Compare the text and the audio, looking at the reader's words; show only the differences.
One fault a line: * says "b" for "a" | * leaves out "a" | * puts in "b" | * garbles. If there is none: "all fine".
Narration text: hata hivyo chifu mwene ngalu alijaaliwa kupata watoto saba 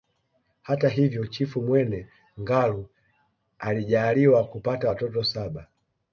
all fine